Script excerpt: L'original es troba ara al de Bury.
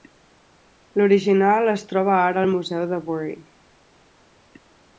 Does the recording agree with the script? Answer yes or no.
no